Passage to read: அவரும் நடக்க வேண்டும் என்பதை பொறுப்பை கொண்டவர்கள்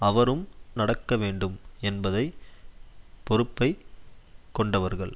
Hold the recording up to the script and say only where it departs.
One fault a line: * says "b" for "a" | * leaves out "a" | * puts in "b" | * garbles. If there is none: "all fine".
all fine